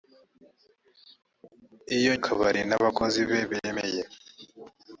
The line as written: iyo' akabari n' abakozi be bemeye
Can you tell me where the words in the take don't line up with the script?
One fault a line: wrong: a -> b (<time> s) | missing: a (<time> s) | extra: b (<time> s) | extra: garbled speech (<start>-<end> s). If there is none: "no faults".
no faults